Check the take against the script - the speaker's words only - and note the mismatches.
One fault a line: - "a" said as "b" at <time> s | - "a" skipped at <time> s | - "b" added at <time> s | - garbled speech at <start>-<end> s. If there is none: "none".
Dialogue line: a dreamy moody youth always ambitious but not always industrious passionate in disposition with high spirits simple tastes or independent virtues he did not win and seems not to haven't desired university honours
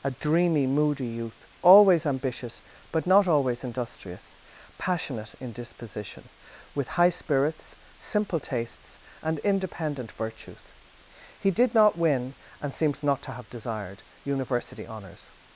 - "or" said as "and" at 9.2 s
- "haven't" said as "have" at 13.3 s